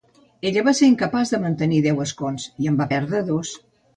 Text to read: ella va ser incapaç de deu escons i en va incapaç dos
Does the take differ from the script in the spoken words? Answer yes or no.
yes